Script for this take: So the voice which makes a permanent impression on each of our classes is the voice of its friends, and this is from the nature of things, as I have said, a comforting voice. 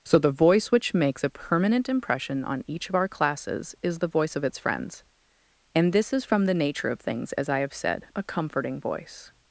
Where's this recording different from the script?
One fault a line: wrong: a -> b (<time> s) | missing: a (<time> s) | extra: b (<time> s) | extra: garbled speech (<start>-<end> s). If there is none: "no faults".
no faults